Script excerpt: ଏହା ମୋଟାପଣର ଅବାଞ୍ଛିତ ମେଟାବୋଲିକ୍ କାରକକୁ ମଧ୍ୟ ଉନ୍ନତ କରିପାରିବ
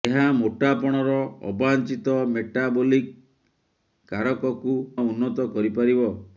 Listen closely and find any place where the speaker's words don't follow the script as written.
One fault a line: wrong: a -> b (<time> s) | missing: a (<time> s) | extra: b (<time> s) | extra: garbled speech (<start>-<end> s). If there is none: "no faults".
missing: ମଧ୍ୟ (4.8 s)